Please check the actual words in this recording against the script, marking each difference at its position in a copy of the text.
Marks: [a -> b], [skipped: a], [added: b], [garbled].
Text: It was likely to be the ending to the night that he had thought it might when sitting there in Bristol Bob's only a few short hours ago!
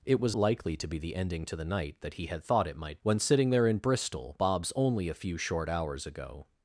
It was likely to be the ending to the night that he had thought it might when sitting there in Bristol Bob's only a few short hours ago!